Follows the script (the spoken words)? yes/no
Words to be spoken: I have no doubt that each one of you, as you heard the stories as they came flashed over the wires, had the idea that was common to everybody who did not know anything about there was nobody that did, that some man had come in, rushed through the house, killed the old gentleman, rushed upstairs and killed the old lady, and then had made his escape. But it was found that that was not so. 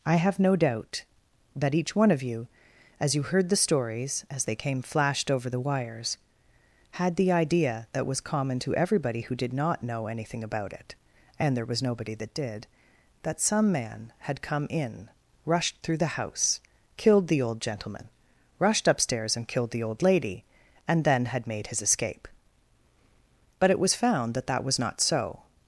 no